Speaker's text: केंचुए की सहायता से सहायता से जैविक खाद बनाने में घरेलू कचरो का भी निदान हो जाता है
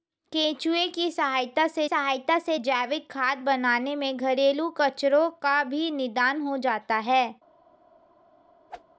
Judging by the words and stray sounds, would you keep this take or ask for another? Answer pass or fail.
fail